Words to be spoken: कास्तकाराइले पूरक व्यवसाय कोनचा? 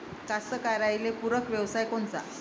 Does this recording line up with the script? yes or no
yes